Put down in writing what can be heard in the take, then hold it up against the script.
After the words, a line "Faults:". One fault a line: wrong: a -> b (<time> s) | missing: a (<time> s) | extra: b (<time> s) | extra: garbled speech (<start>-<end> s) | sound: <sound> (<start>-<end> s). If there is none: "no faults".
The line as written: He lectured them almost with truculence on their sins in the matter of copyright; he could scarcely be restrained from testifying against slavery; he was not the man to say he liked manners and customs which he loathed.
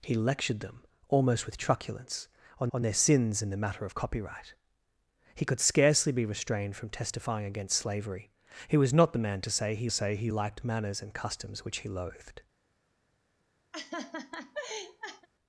He lectured them almost with truculence on on their sins in the matter of copyright; he could scarcely be restrained from testifying against slavery; he was not the man to say he say he liked manners and customs which he loathed.
Faults:
extra: on (2.7 s)
extra: say he (9.9 s)
sound: laugh (13.7-15.3 s)